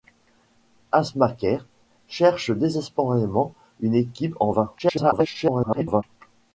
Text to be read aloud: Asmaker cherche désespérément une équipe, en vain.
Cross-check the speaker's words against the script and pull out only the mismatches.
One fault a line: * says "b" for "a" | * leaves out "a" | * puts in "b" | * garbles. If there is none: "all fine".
* garbles